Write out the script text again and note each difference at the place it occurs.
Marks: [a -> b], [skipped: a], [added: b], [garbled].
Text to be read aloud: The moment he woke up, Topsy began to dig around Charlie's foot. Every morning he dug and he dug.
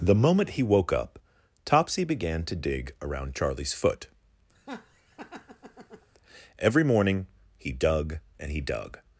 The moment he woke up, Topsy began to dig around Charlie's foot. Every morning he dug and he dug.